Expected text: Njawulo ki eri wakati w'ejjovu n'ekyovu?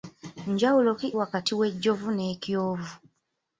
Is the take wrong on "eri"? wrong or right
wrong